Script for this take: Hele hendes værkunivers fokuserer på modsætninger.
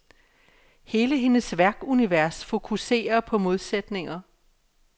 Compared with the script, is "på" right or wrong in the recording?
right